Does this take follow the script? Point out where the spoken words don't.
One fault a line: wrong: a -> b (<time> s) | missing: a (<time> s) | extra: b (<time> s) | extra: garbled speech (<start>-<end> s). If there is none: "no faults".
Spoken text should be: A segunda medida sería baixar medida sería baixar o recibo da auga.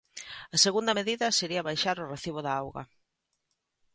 missing: medida sería baixar (2.0 s)